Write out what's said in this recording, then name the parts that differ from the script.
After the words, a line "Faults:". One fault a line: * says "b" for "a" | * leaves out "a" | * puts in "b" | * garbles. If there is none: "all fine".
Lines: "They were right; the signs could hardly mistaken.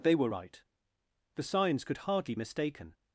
"They were right; the signs could hardly mistaken.
Faults:
all fine